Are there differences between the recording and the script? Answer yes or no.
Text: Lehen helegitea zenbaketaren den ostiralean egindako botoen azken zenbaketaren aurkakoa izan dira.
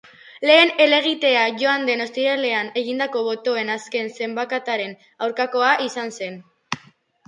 yes